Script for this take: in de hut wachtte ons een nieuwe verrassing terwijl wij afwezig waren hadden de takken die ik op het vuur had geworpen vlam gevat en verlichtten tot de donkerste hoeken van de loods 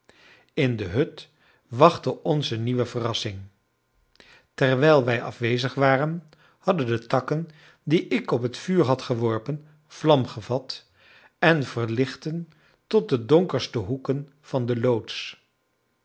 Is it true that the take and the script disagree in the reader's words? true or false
false